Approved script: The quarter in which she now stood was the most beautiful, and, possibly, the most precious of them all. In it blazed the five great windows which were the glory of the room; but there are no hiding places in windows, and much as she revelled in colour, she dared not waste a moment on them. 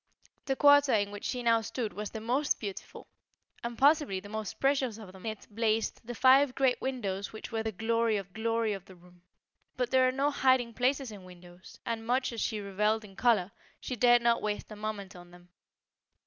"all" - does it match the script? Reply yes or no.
no